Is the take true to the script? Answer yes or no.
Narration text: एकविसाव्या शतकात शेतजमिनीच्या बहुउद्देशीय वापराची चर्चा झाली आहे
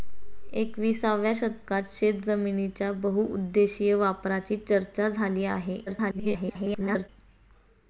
no